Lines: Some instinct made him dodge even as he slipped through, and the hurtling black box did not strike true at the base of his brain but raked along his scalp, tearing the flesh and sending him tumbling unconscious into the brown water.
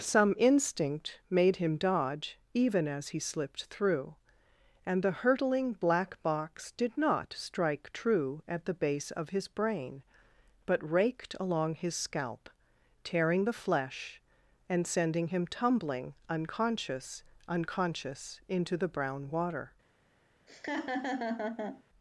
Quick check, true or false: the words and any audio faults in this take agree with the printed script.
false